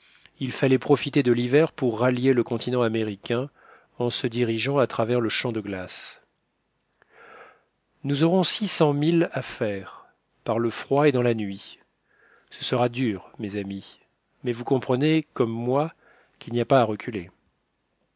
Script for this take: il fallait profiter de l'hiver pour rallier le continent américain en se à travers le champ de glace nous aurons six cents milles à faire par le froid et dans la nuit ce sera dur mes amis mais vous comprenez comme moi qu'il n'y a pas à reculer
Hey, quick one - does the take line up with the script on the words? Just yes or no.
no